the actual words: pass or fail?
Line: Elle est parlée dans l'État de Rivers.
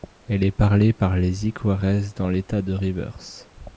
fail